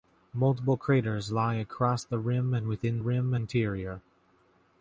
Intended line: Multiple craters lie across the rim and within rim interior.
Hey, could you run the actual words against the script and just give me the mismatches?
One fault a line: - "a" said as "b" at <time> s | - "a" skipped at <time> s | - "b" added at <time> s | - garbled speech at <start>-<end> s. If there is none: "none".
none